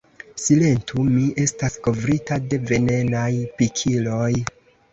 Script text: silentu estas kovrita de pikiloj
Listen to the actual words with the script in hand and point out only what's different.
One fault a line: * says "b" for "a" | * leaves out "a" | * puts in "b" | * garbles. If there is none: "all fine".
* puts in "mi"
* puts in "venenaj"